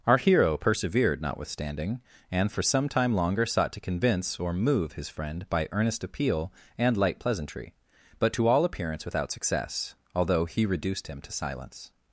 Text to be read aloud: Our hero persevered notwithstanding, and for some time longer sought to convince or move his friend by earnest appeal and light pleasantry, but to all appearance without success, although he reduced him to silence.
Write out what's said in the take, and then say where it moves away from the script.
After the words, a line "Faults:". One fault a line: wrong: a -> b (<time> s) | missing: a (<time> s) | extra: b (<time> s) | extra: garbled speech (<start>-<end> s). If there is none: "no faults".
Our hero persevered notwithstanding, and for some time longer sought to convince or move his friend by earnest appeal and light pleasantry, but to all appearance without success, although he reduced him to silence.
Faults:
no faults